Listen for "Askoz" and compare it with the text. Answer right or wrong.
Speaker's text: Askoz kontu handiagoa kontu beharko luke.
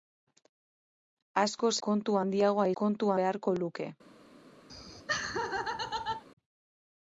right